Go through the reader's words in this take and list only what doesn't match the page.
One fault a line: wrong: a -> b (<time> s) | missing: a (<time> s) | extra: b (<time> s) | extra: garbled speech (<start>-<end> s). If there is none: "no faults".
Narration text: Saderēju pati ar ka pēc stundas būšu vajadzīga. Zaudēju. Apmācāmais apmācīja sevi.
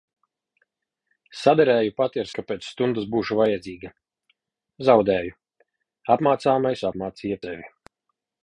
no faults